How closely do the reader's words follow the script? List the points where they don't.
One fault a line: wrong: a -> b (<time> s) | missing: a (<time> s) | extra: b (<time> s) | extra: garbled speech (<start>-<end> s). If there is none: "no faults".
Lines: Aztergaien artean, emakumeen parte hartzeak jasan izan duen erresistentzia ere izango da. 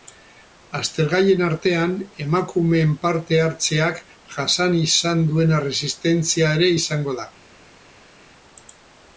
no faults